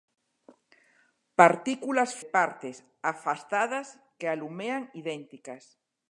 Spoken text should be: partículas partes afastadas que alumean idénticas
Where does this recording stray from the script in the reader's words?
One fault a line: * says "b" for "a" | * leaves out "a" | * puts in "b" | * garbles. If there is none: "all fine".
all fine